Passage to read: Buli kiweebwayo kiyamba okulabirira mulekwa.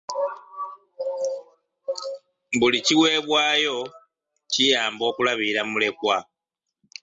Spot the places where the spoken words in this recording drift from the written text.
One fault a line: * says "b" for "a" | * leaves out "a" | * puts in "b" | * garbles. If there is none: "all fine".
all fine